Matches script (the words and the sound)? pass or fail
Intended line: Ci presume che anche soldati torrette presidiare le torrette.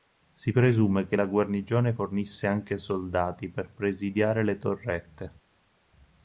fail